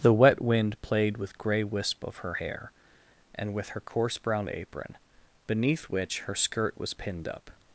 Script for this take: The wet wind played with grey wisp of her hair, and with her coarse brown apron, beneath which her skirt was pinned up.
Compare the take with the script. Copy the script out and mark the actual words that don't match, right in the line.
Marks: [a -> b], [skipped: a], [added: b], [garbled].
The wet wind played with grey wisp of her hair, and with her coarse brown apron, beneath which her skirt was pinned up.